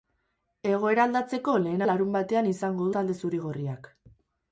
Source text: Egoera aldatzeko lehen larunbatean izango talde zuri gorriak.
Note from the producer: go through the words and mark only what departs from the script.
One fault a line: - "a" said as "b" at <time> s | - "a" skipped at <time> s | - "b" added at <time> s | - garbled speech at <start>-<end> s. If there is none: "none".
none